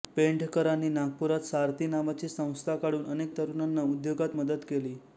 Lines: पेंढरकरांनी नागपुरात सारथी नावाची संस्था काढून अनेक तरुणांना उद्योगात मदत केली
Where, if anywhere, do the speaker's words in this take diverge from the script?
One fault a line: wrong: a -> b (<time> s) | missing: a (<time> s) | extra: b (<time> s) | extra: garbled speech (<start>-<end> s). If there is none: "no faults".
no faults